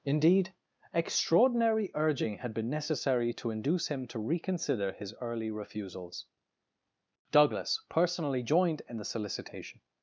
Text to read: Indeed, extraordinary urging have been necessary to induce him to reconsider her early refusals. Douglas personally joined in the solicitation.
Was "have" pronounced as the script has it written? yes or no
no